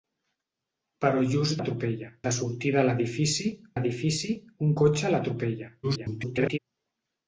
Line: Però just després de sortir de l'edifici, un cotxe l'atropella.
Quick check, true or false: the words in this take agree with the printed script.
false